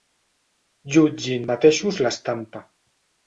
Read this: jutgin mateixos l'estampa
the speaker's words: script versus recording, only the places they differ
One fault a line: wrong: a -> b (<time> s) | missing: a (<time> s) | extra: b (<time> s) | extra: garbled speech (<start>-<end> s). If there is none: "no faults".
no faults